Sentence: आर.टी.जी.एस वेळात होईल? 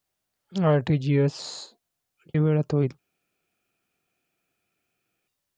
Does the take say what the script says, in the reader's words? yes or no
yes